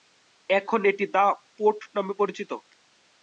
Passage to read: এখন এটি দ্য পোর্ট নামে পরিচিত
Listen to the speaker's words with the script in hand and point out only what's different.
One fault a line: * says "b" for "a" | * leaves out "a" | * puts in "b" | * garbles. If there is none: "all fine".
all fine